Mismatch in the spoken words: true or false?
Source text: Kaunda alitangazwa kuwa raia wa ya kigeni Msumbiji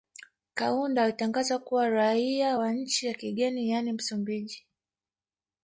true